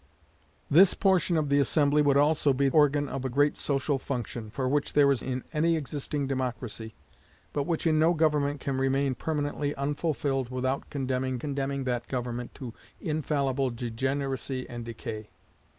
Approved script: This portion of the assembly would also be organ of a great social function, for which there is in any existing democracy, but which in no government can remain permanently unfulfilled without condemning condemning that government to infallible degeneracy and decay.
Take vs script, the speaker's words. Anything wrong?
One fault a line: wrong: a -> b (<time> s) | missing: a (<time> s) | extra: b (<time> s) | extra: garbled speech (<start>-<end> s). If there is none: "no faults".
no faults